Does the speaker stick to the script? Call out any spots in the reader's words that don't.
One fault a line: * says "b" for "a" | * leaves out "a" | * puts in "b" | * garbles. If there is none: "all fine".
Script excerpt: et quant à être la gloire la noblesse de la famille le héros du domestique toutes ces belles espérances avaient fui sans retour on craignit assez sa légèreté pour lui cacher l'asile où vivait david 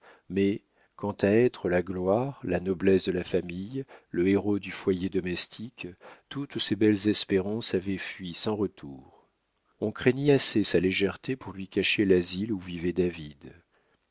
* says "mais" for "et"
* puts in "foyer"